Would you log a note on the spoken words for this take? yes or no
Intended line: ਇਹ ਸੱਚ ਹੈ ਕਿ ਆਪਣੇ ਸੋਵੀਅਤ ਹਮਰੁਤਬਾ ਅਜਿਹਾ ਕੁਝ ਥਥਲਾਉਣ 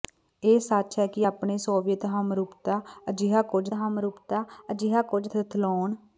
yes